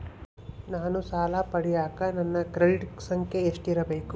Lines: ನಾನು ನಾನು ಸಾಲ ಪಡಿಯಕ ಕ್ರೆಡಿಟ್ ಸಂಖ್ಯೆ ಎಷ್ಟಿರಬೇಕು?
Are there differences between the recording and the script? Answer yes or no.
yes